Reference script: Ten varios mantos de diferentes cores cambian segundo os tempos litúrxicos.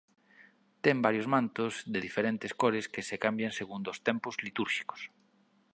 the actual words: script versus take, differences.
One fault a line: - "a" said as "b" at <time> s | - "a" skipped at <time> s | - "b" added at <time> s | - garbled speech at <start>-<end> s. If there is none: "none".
- "que se" added at 2.9 s